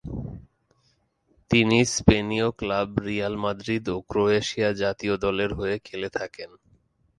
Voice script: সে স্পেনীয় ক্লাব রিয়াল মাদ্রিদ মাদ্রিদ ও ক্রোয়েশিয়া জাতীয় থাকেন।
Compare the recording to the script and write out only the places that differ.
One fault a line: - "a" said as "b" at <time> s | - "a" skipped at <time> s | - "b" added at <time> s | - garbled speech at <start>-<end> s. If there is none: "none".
- "সে" said as "তিনি" at 1.5 s
- "মাদ্রিদ" skipped at 3.9 s
- "দলের হয়ে খেলে" added at 5.2 s